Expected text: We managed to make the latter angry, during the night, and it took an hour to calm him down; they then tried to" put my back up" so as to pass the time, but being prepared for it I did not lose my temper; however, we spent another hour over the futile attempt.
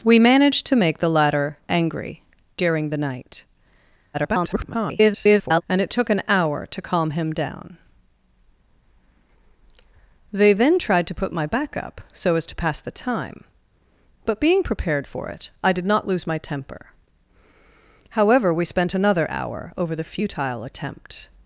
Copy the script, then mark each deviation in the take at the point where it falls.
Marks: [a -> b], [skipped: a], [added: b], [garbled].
We managed to make the latter angry, during the night, [garbled] and it took an hour to calm him down; they then tried to" put my back up" so as to pass the time, but being prepared for it I did not lose my temper; however, we spent another hour over the futile attempt.